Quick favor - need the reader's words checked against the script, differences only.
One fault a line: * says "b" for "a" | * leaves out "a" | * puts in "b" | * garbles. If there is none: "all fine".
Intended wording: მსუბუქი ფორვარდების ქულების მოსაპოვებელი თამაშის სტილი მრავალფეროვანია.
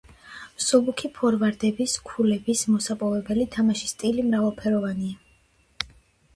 all fine